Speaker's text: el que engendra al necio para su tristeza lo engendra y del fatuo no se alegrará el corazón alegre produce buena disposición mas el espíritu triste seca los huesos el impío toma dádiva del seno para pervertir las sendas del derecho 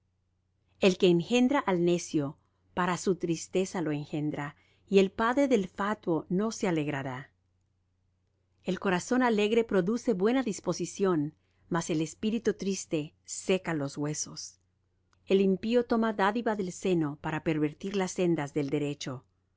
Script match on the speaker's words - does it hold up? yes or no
no